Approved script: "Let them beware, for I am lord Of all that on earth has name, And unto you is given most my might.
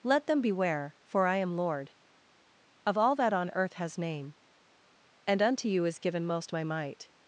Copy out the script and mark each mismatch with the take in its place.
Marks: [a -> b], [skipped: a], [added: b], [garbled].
"Let them beware, for I am lord Of all that on earth has name, And unto you is given most my might.